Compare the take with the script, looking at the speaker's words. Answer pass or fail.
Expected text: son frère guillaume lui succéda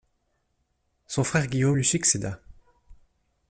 pass